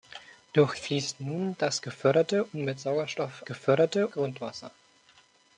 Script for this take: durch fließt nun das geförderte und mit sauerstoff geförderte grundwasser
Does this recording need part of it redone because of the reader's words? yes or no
no